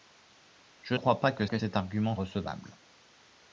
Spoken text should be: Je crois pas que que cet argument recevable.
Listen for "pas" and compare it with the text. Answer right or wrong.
right